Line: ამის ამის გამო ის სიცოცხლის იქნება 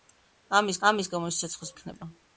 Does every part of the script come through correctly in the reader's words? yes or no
yes